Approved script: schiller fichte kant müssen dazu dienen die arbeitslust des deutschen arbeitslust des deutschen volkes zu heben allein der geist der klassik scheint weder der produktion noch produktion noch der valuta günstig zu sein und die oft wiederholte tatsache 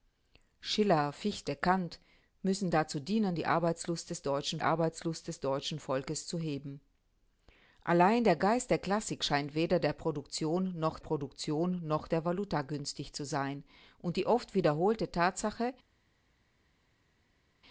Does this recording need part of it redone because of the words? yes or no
no